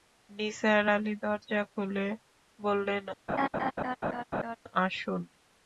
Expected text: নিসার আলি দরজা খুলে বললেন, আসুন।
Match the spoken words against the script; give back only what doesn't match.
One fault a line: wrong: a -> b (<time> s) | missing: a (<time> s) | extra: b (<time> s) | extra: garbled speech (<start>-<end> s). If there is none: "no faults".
no faults